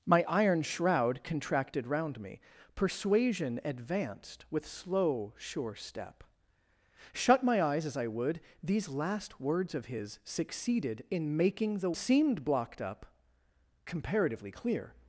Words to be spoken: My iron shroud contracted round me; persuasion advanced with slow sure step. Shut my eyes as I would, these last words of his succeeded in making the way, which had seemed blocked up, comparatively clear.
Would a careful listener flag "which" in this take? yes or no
yes